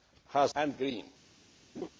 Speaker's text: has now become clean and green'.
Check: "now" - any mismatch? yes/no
yes